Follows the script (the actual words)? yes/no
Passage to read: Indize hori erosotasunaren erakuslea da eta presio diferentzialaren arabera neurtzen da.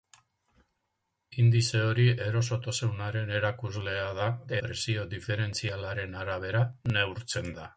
no